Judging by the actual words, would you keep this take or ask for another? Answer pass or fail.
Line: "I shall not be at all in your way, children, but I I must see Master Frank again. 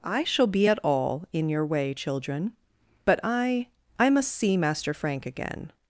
fail